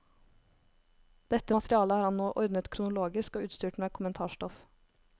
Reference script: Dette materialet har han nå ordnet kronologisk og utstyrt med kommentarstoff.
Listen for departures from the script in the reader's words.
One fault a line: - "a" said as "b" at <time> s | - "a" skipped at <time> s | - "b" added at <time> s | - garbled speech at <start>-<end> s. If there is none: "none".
none